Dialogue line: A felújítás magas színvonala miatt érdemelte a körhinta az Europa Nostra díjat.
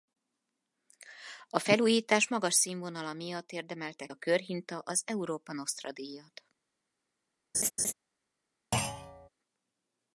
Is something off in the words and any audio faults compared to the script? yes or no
yes